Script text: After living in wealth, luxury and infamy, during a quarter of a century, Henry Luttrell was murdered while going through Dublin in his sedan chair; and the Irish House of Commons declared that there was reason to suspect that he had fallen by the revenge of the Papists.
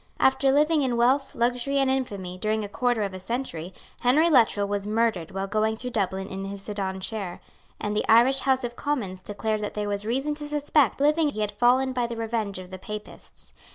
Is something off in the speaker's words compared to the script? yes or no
yes